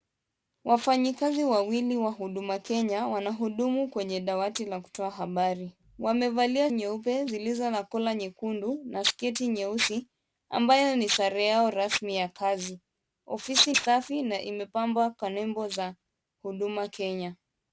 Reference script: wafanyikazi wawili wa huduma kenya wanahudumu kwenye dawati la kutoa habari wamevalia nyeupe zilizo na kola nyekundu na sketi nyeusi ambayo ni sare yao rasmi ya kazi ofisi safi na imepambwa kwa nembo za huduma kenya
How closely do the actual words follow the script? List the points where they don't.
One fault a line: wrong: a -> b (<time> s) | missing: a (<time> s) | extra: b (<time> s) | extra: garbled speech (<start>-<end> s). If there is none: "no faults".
no faults